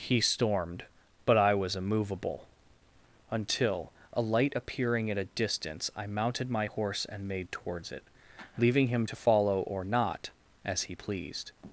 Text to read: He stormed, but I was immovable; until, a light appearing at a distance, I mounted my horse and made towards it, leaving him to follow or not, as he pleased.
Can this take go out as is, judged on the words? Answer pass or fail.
pass